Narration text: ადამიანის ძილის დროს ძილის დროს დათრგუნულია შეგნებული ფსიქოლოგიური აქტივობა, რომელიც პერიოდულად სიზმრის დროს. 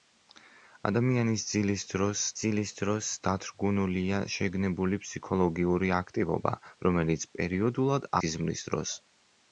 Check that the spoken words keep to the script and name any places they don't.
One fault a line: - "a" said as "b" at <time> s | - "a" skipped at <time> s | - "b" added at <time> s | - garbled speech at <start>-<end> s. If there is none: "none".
none